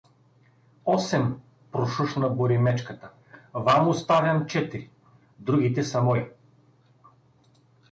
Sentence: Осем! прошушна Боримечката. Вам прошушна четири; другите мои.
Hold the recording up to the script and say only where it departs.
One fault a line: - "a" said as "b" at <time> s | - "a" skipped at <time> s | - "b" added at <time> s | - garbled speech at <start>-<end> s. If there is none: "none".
- "прошушна" said as "оставям" at 3.9 s
- "са" added at 5.8 s